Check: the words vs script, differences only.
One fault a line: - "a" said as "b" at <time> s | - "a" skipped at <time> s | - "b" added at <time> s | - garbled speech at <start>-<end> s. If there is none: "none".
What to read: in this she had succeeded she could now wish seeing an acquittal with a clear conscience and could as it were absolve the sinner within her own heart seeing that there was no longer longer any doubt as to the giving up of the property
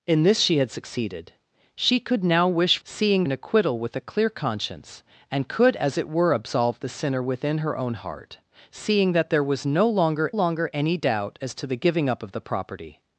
none